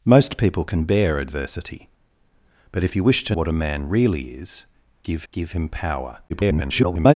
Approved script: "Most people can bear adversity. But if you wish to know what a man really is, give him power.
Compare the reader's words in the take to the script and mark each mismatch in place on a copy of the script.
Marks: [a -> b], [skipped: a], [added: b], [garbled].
"Most people can bear adversity. But if you wish to [skipped: know] what a man really is, give [added: give] him power. [garbled]